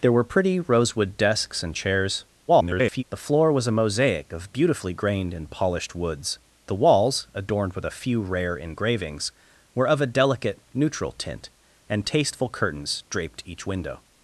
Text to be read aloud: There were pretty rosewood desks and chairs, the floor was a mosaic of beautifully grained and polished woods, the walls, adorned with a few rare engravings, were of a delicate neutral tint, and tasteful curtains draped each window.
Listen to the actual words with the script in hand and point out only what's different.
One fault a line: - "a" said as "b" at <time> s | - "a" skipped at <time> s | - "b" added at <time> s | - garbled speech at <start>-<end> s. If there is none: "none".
- garbled speech at 2.5-3.0 s